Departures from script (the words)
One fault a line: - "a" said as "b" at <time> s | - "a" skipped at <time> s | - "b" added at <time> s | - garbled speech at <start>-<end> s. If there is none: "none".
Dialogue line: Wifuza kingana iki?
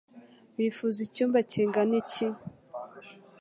- "icyumba" added at 1.1 s